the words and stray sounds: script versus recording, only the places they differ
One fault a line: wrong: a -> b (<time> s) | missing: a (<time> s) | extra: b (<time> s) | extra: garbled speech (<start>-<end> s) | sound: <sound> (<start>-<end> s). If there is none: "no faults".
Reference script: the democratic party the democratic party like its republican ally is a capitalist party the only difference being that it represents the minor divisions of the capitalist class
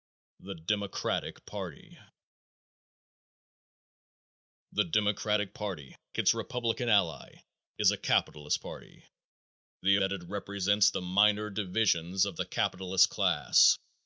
missing: like (5.9 s)
missing: only difference being (10.0 s)